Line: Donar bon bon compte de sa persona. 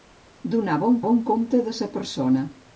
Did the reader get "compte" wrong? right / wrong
right